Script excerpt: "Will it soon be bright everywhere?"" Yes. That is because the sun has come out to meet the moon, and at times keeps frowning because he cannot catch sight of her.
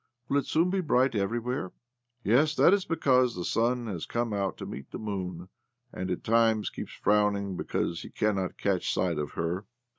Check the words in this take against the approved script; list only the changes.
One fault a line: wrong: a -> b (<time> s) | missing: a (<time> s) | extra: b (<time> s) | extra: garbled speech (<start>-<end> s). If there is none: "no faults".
no faults